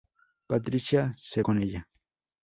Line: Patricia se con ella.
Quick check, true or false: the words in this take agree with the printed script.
true